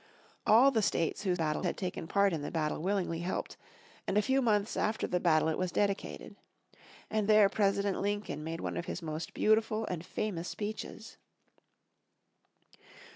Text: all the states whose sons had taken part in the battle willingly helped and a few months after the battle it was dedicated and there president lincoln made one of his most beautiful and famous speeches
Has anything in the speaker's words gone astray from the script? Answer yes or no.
yes